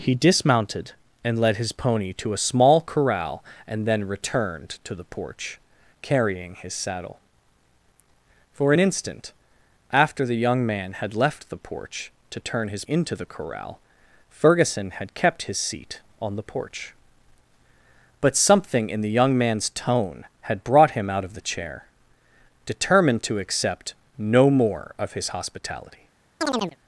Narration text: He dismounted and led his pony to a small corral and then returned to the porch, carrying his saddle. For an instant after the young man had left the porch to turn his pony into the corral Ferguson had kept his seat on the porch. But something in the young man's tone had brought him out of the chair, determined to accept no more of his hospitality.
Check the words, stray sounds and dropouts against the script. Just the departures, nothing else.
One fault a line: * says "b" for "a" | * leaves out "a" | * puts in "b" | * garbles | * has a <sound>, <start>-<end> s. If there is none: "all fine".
* leaves out "pony"
* has a chirp, 26.4-26.8 s